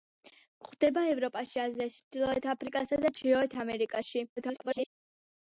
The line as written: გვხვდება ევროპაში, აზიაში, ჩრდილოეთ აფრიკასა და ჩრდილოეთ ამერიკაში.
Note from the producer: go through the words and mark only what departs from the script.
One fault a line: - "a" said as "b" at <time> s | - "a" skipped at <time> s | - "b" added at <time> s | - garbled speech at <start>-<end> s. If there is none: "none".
- garbled speech at 4.4-4.9 s